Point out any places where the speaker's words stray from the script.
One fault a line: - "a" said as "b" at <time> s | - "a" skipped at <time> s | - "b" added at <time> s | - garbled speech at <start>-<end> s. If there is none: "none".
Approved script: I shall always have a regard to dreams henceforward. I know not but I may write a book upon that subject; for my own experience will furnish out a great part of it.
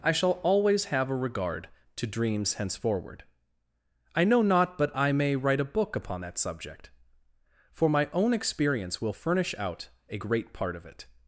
none